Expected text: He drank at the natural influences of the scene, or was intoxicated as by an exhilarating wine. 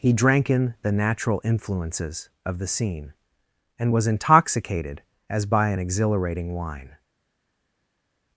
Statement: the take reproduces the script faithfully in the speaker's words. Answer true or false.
false